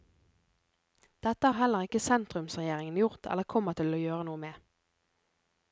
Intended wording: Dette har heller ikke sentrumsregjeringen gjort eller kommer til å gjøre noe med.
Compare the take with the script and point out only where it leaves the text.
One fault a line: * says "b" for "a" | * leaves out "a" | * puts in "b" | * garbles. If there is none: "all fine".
all fine